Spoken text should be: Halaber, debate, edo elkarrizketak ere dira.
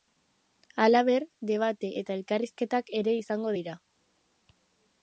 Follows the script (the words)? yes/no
no